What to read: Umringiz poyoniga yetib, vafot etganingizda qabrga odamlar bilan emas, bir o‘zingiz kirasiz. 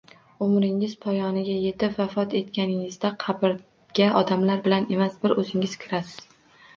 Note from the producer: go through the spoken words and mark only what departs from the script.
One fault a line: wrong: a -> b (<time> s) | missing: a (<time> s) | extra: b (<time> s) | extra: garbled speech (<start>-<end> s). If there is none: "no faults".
no faults